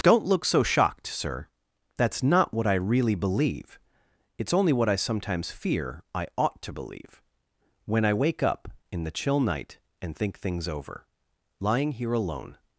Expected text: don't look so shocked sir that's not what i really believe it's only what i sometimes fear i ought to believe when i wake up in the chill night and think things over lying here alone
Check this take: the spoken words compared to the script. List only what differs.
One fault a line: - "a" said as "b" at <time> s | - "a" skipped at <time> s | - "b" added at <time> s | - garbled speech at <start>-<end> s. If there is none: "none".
none